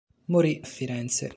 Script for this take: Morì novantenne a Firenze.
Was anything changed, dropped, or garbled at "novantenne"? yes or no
yes